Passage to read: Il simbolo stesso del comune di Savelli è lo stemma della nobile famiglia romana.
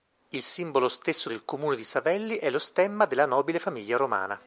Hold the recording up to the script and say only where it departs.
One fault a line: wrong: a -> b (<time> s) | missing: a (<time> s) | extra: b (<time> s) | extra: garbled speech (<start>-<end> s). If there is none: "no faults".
no faults